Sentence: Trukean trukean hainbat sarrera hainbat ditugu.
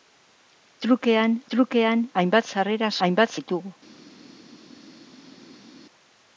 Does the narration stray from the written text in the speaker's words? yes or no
no